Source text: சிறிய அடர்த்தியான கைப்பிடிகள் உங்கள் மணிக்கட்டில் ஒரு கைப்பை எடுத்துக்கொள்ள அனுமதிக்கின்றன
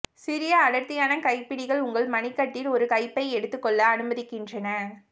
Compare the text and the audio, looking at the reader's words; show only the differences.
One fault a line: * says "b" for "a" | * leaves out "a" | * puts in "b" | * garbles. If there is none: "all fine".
all fine